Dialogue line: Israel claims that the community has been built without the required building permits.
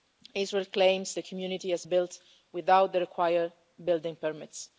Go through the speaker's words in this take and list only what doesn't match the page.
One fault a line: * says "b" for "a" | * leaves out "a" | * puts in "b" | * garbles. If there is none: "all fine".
* leaves out "that"
* leaves out "been"